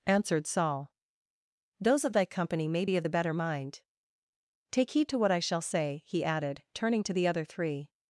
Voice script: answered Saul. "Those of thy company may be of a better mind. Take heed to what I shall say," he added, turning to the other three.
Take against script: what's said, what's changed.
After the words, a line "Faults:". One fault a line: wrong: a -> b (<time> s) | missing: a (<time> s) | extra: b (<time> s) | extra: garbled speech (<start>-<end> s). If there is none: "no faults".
answered Saul. "Those of thy company may be of the better mind. Take heed to what I shall say," he added, turning to the other three.
Faults:
wrong: a -> the (3.0 s)